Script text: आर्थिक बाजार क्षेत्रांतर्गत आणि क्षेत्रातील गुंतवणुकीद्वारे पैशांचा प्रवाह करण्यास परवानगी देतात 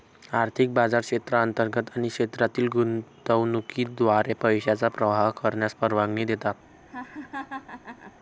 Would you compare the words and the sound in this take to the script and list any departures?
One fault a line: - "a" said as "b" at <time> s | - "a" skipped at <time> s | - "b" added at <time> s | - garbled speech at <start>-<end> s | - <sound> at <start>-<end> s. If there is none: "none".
- laugh at 6.9-8.1 s